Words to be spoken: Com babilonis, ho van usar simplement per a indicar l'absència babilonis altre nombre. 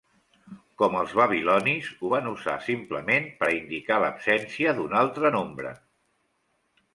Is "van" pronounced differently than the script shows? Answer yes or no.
no